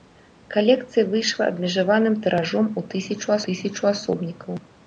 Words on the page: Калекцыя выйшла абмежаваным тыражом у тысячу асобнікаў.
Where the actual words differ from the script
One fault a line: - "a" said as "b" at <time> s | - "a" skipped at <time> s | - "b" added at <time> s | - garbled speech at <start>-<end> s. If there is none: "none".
- "тысячу" added at 3.5 s